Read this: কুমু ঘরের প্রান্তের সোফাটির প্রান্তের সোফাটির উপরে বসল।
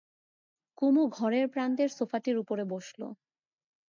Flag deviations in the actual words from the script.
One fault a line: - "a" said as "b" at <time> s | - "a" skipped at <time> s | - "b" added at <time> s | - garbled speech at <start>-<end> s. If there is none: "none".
- "প্রান্তের সোফাটির" skipped at 2.4 s